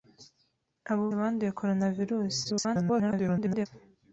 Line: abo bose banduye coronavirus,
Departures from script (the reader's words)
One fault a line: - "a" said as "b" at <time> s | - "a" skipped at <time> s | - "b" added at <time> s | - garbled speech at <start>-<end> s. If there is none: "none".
- "bose" skipped at 1.1 s
- garbled speech at 2.4-3.7 s